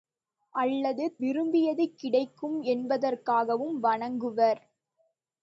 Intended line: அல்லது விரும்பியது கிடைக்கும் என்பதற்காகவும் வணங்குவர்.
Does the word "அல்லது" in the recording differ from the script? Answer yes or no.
no